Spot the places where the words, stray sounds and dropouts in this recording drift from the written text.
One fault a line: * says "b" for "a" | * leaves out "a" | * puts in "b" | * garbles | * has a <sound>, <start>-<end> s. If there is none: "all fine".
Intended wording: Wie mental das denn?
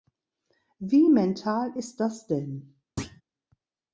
* puts in "ist"
* has a thud, 3.0-3.2 s